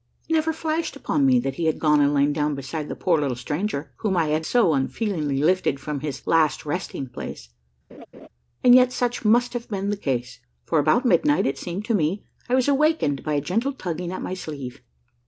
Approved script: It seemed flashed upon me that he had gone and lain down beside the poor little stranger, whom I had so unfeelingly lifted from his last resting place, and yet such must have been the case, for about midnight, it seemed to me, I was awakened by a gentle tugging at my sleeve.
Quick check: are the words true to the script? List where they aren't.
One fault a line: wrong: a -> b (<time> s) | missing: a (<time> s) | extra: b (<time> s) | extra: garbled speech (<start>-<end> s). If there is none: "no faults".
wrong: seemed -> never (0.3 s)